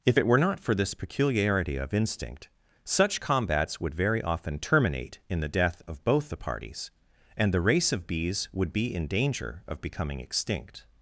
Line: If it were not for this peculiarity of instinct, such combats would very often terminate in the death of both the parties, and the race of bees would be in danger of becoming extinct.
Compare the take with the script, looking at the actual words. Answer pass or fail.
pass